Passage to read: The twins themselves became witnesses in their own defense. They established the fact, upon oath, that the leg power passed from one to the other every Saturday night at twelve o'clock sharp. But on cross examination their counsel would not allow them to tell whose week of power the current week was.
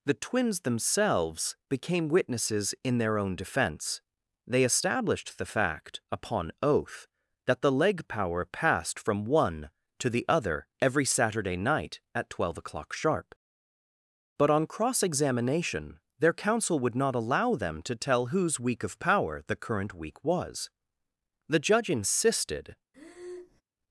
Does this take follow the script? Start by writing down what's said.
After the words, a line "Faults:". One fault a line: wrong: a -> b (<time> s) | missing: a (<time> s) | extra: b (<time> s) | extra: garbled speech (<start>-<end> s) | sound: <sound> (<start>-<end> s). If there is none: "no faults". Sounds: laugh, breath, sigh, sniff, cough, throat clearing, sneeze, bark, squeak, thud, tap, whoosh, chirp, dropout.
The twins themselves became witnesses in their own defense. They established the fact, upon oath, that the leg power passed from one to the other every Saturday night at twelve o'clock sharp. But on cross examination their counsel would not allow them to tell whose week of power the current week was. The judge insisted
Faults:
extra: The judge insisted (21.5 s)
sound: breath (22.9-23.6 s)